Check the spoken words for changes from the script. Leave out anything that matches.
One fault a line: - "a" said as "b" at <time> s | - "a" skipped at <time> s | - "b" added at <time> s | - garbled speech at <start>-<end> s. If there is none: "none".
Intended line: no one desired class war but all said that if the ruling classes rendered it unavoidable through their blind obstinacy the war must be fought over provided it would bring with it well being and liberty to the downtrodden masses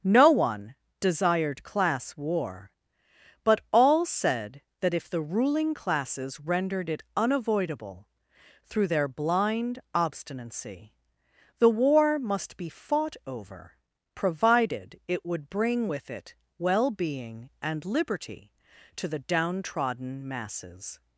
none